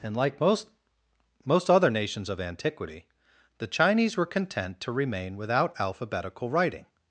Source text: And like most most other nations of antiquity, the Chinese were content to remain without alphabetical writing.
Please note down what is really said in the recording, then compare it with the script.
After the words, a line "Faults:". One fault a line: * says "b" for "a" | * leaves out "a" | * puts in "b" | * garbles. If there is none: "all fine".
And like most most other nations of antiquity, the Chinese were content to remain without alphabetical writing.
Faults:
all fine